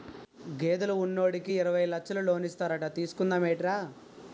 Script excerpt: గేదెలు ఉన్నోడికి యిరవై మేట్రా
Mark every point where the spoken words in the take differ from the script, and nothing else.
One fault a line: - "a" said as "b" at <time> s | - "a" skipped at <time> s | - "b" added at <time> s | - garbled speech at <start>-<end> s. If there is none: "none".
- "లచ్చలు లోనిస్తారట తీసుకుందా" added at 1.9 s